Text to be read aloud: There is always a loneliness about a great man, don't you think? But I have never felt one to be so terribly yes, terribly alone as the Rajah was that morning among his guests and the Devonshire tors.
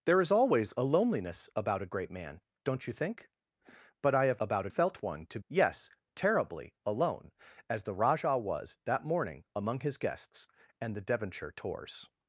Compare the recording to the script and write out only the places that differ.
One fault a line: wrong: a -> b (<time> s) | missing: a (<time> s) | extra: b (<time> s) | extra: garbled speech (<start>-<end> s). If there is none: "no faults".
wrong: never -> about (4.4 s)
missing: be so terribly (5.4 s)